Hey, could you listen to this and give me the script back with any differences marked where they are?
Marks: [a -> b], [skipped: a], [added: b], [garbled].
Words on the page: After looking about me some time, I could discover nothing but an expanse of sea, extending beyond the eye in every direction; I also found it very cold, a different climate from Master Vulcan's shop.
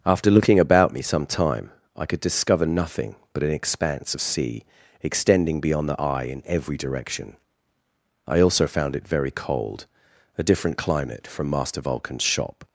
After looking about me some time, I could discover nothing but an expanse of sea, extending beyond the eye in every direction; I also found it very cold, a different climate from Master Vulcan's shop.